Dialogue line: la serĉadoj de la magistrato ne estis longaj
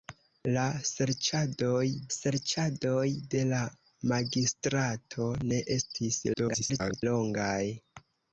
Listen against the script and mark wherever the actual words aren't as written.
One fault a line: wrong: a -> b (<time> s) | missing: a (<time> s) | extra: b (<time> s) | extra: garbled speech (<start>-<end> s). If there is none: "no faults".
extra: serĉadoj (2.2 s)
extra: garbled speech (6.3-7.0 s)